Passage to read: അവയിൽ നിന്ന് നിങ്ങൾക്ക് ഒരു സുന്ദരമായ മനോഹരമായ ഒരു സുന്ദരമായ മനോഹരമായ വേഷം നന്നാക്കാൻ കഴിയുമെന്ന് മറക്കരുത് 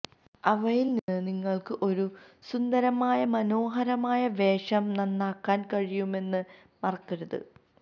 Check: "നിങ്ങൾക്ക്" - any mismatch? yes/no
no